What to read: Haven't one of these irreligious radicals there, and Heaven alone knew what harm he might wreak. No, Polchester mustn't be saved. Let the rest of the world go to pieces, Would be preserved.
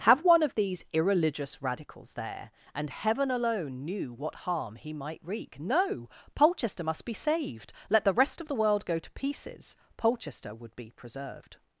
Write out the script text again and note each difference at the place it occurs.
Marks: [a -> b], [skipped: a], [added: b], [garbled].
[Haven't -> Have] one of these irreligious radicals there, and Heaven alone knew what harm he might wreak. No, Polchester [mustn't -> must] be saved. Let the rest of the world go to pieces, [added: Polchester] Would be preserved.